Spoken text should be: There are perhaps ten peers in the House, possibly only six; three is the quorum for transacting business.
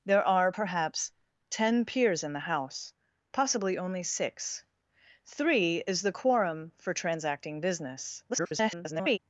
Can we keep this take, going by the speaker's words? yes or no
no